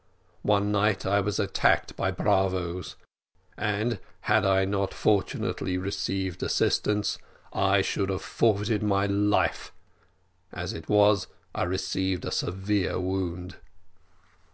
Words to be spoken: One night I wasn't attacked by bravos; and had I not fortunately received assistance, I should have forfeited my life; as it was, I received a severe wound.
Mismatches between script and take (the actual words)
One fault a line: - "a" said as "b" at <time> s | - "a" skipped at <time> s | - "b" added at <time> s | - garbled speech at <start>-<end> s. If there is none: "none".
- "wasn't" said as "was" at 1.2 s